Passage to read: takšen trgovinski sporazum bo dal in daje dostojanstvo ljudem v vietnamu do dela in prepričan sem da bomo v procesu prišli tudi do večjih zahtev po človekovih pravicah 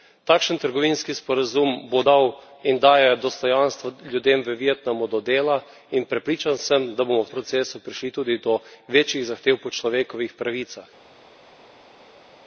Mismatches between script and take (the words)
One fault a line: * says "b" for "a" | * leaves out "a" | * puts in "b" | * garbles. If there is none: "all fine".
all fine